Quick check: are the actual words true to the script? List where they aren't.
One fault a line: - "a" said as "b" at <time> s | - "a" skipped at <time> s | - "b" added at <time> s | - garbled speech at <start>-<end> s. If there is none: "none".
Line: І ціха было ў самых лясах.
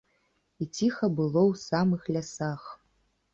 none